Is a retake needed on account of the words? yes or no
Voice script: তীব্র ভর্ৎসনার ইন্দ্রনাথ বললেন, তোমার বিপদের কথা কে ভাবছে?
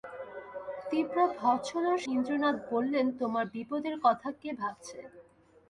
no